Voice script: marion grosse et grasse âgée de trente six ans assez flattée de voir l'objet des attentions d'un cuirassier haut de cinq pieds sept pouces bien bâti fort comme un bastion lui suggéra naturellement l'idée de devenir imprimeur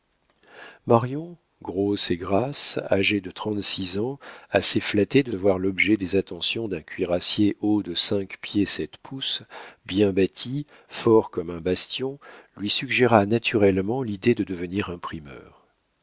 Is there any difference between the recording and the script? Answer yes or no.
no